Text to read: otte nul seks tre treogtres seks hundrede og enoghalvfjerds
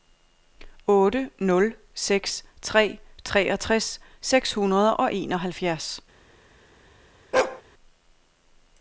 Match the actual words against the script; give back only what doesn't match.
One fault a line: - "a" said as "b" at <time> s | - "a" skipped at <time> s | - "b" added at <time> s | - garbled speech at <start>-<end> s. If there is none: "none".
none